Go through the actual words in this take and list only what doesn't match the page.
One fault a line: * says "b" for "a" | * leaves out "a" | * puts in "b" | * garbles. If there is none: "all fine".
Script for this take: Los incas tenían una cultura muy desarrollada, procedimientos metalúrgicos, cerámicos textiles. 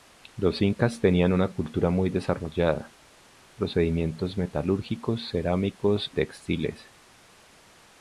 all fine